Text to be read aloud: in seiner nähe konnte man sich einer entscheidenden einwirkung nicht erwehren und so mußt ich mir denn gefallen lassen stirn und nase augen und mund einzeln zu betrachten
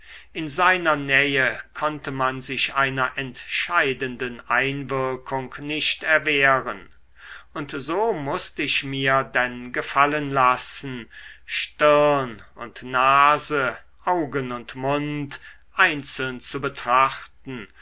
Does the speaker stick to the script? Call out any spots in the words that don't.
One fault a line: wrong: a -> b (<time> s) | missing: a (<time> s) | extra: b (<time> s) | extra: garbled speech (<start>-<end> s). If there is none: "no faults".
no faults